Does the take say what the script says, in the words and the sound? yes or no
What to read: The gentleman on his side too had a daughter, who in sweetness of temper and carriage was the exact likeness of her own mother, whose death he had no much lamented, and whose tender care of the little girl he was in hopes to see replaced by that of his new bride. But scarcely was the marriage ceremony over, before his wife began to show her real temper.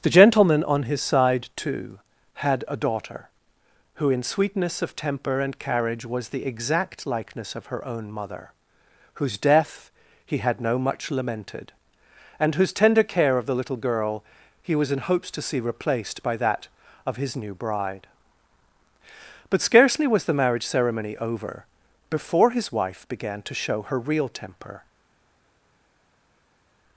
yes